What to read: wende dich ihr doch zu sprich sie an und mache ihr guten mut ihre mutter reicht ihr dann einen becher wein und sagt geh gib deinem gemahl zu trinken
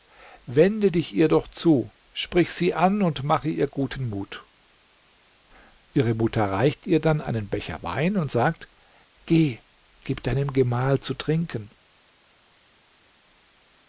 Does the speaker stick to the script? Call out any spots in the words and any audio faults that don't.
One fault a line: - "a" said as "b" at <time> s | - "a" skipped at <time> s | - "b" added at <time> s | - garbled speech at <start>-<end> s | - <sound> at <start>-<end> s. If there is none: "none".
none